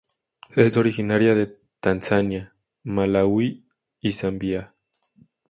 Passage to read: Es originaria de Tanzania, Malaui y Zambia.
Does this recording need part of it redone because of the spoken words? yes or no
no